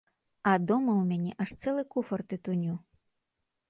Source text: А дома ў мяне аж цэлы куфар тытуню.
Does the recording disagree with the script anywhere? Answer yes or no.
no